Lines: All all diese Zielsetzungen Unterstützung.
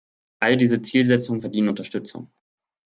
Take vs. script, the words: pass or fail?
fail